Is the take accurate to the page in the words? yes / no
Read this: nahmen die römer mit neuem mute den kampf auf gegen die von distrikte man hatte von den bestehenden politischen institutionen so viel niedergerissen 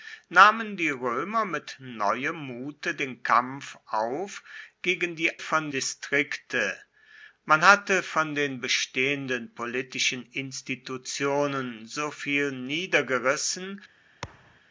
yes